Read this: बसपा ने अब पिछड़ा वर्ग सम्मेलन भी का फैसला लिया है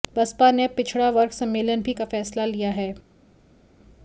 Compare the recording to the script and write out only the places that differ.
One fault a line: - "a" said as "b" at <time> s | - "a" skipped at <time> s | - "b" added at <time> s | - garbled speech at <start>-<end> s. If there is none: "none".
none